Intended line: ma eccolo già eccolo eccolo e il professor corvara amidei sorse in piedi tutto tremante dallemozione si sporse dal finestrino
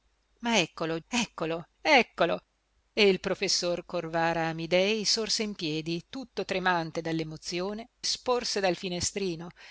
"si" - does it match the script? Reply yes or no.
no